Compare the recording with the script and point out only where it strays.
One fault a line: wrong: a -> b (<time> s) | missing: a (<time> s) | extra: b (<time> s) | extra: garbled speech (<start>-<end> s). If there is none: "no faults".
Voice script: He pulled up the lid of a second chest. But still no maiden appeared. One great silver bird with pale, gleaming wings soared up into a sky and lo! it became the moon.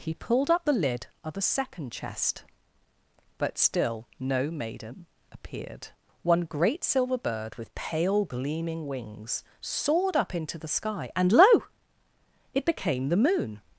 wrong: a -> the (10.6 s)